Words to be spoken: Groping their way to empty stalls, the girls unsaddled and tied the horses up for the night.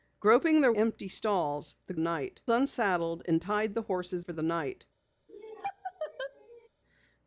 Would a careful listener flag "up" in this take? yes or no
yes